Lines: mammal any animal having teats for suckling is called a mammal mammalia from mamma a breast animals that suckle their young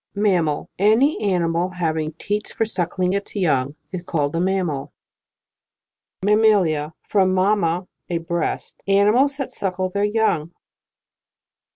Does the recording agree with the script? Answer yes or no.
no